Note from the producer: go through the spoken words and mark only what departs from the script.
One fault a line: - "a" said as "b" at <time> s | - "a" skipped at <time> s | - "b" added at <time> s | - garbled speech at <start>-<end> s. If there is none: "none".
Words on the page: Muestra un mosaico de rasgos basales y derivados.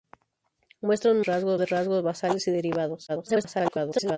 - "mosaico" said as "rasgos" at 1.2 s
- garbled speech at 3.1-4.2 s